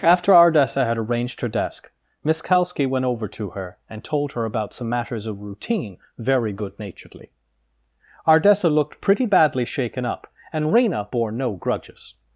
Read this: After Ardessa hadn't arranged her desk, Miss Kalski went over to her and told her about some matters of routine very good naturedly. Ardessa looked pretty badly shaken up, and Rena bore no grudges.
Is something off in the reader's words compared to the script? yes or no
yes